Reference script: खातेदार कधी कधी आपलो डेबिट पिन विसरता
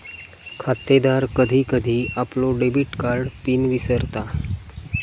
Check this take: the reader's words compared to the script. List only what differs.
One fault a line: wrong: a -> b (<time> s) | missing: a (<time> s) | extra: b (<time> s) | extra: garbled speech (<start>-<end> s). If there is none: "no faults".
extra: कार्ड (3.0 s)